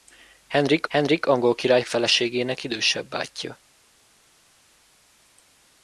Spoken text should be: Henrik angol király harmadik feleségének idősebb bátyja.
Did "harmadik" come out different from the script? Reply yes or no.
yes